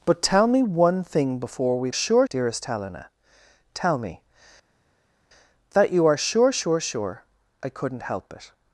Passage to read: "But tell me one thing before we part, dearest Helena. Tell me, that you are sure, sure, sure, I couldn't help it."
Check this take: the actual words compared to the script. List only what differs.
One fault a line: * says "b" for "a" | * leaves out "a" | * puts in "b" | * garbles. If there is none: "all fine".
* says "sure" for "part"